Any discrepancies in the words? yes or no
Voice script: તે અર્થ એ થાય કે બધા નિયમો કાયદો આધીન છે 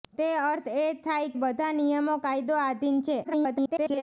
yes